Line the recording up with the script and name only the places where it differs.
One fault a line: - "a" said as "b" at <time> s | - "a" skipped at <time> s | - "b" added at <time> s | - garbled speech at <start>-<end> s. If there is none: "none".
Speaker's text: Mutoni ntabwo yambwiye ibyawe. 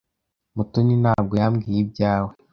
none